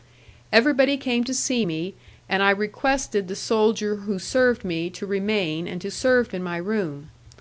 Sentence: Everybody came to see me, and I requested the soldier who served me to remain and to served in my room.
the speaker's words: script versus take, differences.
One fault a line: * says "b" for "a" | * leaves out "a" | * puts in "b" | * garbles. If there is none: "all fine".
all fine